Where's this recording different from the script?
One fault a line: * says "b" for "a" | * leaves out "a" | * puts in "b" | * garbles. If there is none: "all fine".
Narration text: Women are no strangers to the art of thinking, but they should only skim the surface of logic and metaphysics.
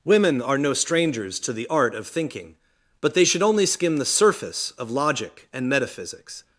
all fine